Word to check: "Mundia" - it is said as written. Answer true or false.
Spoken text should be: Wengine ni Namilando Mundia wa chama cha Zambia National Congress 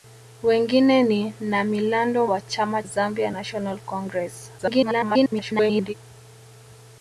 false